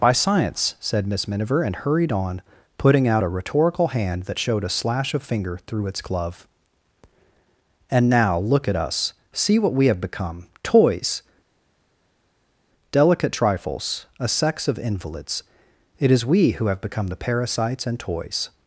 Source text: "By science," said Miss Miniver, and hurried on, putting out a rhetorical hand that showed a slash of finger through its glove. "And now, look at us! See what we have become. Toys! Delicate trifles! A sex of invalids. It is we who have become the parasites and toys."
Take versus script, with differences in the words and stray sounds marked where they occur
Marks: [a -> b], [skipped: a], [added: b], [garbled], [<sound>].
"By science," said Miss Miniver, and hurried on, putting out a rhetorical hand that showed a slash of finger through its glove. "And now, look at us! See what we have become. Toys! Delicate trifles! A sex of invalids. It is we who have become the parasites and toys."